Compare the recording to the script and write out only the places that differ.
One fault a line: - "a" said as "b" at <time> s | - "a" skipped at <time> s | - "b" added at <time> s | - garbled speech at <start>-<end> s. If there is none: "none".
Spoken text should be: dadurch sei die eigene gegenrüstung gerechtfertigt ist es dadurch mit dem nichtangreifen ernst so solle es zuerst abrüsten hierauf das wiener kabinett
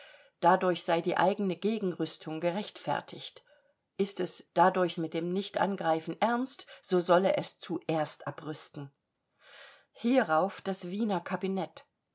none